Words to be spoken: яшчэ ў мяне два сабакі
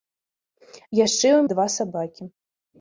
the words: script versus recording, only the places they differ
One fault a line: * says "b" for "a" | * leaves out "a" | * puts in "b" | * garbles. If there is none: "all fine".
* leaves out "мяне"